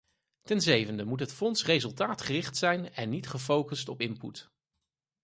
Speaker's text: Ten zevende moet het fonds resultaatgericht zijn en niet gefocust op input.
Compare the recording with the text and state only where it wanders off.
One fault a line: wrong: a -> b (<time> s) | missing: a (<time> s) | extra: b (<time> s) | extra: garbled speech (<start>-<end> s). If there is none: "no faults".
no faults